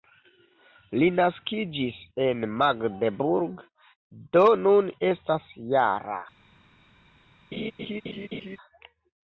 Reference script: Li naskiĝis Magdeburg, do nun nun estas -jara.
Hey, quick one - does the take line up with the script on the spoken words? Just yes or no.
no